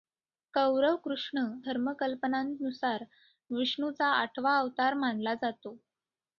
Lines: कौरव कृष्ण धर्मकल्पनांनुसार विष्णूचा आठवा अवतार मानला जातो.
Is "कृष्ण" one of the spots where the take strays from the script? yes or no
no